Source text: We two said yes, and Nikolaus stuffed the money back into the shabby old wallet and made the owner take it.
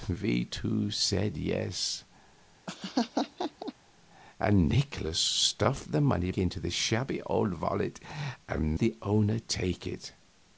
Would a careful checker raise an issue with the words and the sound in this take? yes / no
yes